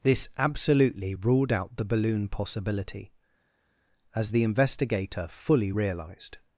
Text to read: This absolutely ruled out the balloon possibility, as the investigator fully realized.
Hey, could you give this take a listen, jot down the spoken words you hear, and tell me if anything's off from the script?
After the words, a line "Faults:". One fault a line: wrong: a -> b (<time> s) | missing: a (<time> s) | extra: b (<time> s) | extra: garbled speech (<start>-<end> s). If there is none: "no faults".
This absolutely ruled out the balloon possibility, as the investigator fully realized.
Faults:
no faults